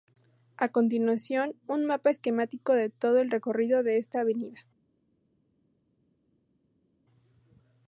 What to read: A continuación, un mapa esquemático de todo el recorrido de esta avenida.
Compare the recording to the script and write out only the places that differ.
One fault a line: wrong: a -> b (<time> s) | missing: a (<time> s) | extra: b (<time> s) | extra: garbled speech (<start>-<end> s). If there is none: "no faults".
no faults